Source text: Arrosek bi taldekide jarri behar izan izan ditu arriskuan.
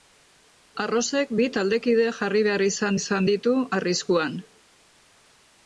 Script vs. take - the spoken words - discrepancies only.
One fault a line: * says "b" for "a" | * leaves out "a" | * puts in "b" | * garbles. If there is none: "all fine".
all fine